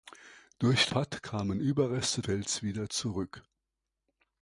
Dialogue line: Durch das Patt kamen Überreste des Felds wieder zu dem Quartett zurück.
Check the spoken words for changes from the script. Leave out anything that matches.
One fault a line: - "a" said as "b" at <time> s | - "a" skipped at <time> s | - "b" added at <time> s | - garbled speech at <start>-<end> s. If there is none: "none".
- "das" skipped at 0.9 s
- "des" skipped at 2.2 s
- "zu dem Quartett" skipped at 2.9 s